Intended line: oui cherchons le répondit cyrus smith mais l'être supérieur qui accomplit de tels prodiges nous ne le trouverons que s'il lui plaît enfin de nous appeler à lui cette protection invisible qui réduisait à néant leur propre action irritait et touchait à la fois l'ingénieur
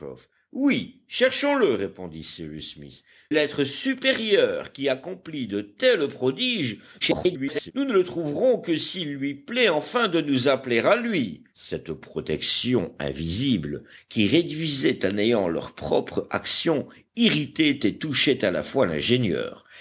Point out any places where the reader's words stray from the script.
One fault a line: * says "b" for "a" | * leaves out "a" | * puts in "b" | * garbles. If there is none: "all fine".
* leaves out "mais"
* garbles